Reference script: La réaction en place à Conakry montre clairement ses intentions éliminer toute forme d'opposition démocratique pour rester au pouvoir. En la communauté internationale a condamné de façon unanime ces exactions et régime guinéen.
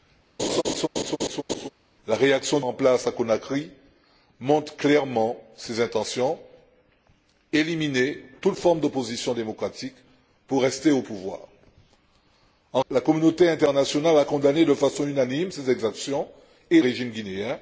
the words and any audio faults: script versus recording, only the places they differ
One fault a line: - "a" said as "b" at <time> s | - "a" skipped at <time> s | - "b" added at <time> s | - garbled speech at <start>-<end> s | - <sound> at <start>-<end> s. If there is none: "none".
- laugh at 0.4-1.7 s